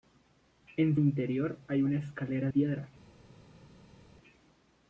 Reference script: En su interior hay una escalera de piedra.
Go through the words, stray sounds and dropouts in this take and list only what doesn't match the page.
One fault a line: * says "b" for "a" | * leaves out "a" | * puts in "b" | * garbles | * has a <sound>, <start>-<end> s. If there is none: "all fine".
* leaves out "su"
* leaves out "de"